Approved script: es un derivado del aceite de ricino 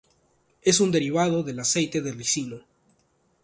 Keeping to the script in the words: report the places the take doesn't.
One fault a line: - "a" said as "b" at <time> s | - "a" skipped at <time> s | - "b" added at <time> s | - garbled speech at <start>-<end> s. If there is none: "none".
none